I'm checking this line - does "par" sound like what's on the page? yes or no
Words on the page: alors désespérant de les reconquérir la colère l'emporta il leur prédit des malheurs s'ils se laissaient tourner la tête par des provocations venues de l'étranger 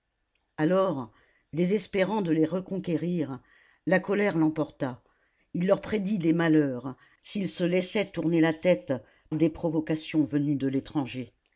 no